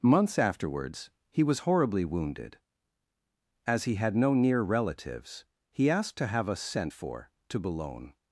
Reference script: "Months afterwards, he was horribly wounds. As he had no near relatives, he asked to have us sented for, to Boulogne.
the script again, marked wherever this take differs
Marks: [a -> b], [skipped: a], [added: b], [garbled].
"Months afterwards, he was horribly [wounds. -> wounded] As he had no near relatives, he asked to have us [sented -> sent] for, to Boulogne.